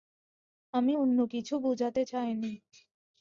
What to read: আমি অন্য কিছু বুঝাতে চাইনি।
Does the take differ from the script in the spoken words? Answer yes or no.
no